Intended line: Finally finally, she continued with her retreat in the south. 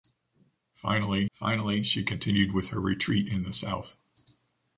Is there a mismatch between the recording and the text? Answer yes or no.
no